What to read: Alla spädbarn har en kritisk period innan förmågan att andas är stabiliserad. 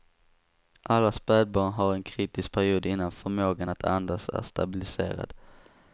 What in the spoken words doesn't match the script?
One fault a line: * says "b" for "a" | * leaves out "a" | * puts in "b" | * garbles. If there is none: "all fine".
all fine